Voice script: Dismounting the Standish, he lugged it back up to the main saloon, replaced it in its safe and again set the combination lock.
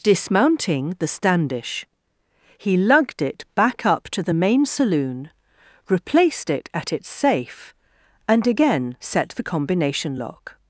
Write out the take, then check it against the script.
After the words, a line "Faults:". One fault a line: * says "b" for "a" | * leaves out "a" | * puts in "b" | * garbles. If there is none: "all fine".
Dismounting the Standish, he lugged it back up to the main saloon, replaced it at its safe and again set the combination lock.
Faults:
* says "at" for "in"